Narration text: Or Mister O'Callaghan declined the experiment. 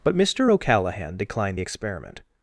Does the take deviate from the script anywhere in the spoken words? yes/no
yes